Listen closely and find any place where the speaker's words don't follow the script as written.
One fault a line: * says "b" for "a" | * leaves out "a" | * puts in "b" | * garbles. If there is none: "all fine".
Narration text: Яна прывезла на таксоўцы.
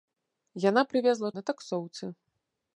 all fine